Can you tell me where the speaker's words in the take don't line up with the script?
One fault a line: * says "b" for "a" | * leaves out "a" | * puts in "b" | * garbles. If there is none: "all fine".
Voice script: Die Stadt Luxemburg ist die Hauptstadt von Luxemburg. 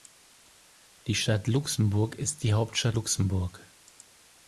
* leaves out "von"